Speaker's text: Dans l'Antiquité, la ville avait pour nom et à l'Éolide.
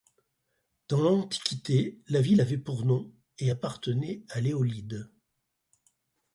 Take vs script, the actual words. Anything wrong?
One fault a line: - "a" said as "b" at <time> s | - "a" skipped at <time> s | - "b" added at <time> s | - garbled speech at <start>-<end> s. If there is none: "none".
- "appartenait" added at 3.5 s